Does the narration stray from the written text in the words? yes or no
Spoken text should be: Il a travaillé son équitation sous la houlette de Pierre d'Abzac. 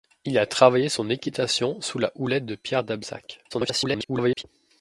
yes